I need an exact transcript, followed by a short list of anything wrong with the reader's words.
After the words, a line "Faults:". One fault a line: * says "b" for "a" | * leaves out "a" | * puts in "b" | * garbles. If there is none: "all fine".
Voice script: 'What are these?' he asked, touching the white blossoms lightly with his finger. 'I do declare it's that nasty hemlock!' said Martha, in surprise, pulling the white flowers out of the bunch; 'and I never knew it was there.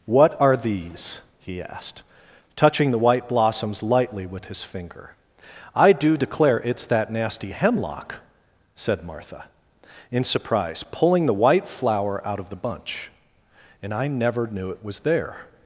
'What are these?' he asked, touching the white blossoms lightly with his finger. 'I do declare it's that nasty hemlock!' said Martha, in surprise, pulling the white flower out of the bunch; 'and I never knew it was there.
Faults:
* says "flower" for "flowers"